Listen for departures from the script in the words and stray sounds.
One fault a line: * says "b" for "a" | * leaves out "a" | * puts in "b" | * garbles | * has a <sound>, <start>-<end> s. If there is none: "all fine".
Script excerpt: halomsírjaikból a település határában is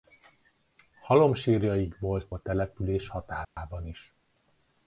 * has a dropout, 3.4-3.6 s